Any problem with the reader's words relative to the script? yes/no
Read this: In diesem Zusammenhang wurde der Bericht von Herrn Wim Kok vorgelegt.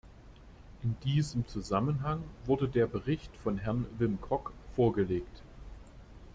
no